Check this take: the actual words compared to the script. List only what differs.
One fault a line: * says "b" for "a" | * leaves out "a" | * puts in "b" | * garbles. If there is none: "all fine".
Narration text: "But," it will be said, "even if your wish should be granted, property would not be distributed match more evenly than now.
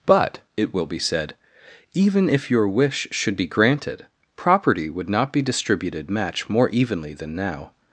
all fine